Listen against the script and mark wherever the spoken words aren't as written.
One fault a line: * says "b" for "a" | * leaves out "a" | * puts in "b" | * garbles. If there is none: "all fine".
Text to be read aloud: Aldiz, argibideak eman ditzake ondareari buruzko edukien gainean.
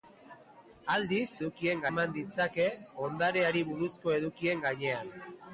* says "edukien" for "argibideak"